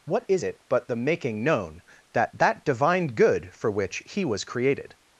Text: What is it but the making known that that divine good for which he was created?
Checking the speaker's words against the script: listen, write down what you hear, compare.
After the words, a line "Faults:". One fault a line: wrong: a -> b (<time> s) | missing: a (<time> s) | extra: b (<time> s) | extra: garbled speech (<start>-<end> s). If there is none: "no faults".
What is it but the making known that that divine good for which he was created?
Faults:
no faults